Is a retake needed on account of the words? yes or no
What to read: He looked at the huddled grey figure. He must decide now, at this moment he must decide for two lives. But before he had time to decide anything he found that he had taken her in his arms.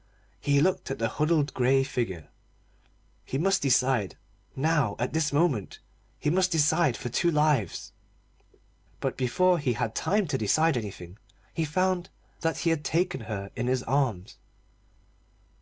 no